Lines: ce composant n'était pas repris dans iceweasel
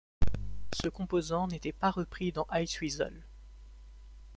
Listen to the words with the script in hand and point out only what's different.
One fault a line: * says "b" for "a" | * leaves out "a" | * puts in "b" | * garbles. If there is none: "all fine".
all fine